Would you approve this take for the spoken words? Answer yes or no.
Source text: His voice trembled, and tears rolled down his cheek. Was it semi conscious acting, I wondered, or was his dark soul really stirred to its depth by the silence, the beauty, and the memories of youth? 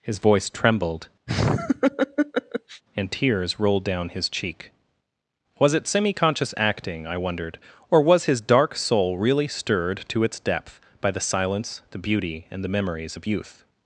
yes